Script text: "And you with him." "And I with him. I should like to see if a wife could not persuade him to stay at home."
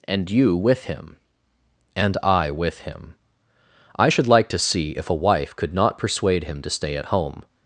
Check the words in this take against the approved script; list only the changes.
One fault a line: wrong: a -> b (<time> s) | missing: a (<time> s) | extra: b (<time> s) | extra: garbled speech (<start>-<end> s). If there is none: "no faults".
no faults